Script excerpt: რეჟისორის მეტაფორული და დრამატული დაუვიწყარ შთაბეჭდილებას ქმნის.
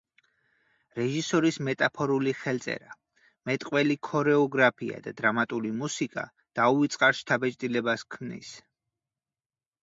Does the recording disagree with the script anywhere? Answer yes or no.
yes